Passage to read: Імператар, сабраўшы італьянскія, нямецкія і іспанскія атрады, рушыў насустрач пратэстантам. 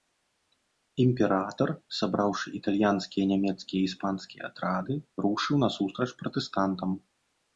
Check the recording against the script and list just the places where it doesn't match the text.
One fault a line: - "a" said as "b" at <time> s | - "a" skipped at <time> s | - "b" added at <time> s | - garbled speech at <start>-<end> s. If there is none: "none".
none